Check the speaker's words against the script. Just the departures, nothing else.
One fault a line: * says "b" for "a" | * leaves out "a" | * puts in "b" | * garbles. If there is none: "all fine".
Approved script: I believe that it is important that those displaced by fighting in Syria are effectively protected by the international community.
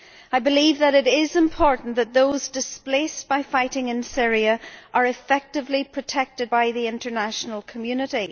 all fine